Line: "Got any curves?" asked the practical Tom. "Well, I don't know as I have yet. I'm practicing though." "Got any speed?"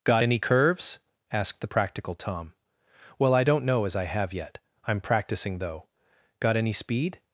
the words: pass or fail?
pass